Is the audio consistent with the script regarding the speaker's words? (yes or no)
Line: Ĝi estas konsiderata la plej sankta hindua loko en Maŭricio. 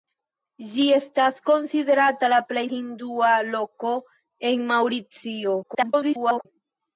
no